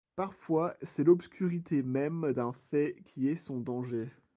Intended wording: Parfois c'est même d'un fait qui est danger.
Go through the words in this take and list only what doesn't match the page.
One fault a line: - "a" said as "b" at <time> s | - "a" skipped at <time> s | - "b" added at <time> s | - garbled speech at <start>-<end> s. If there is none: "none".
- "l'obscurité" added at 1.0 s
- "son" added at 3.4 s